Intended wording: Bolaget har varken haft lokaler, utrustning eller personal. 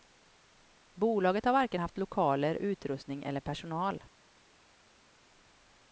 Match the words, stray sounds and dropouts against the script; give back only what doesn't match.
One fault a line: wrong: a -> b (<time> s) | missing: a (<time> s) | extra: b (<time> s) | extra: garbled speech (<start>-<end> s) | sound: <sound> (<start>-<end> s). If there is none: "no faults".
no faults